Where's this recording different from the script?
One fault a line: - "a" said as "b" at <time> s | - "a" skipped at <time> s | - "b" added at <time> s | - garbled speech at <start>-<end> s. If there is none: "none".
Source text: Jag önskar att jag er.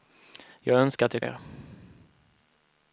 none